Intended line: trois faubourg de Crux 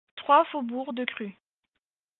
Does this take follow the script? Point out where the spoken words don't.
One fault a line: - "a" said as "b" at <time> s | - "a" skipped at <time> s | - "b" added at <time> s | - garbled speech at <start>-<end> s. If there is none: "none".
none